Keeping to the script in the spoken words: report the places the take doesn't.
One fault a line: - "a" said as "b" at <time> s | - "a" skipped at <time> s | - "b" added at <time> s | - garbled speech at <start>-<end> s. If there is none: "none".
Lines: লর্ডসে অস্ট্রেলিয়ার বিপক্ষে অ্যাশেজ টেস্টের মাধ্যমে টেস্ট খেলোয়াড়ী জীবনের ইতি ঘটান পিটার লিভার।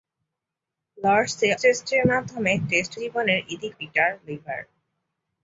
- "অস্ট্রেলিয়ার বিপক্ষে অ্যাশেজ" skipped at 1.5 s
- "খেলোয়াড়ী" skipped at 2.9 s
- "ঘটান" skipped at 3.7 s